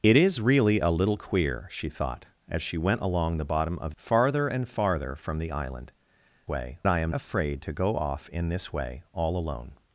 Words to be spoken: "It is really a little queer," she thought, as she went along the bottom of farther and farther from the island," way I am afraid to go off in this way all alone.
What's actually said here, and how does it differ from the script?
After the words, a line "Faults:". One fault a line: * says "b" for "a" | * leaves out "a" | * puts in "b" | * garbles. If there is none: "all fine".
"It is really a little queer," she thought, as she went along the bottom of farther and farther from the island," way I am afraid to go off in this way all alone.
Faults:
all fine